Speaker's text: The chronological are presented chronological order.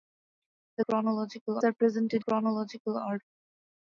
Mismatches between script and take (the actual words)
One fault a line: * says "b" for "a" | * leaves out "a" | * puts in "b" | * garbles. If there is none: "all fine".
all fine